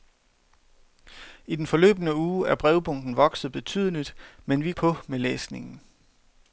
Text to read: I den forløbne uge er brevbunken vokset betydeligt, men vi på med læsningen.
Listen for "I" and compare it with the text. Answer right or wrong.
right